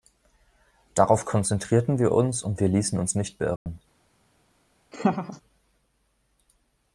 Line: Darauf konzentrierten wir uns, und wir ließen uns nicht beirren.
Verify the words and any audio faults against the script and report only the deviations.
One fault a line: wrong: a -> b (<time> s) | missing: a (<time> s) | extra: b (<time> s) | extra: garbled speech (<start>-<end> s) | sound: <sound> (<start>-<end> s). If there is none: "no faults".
sound: dropout (3.6-3.7 s)
sound: laugh (4.9-5.4 s)